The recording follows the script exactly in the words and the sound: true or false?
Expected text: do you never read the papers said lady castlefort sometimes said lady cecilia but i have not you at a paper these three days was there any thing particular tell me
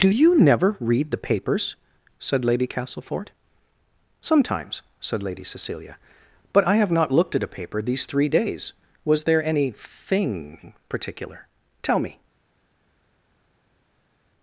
false